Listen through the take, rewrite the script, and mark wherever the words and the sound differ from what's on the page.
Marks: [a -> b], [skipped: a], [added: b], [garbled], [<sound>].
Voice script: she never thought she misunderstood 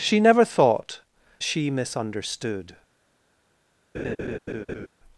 she never thought she misunderstood [laugh]